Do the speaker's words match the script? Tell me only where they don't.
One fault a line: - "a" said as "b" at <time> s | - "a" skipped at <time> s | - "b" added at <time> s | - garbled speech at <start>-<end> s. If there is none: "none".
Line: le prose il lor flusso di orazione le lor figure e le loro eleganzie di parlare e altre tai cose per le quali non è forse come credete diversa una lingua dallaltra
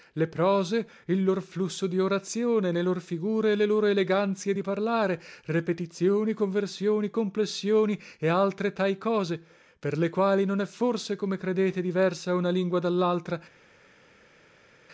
- "repetizioni conversioni complessioni" added at 5.5 s